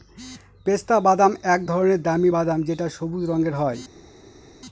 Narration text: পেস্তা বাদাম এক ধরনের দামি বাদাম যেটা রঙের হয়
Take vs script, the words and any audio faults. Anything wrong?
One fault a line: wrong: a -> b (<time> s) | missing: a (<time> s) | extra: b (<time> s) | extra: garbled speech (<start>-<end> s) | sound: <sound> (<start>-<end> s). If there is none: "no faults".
extra: সবুজ (2.9 s)